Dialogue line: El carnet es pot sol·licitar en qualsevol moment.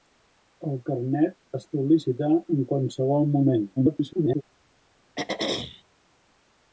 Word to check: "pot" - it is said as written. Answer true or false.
false